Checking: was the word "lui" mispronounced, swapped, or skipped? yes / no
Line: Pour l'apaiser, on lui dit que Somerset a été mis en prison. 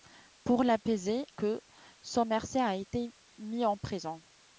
yes